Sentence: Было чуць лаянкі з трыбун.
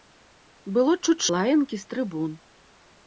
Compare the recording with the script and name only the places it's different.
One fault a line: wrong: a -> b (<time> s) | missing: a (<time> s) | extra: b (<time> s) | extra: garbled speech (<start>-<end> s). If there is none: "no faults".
no faults